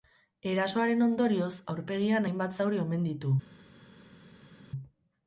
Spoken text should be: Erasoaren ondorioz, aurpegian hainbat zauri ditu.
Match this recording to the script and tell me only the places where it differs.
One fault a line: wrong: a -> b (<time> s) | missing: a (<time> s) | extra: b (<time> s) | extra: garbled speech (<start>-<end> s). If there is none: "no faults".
extra: omen (2.9 s)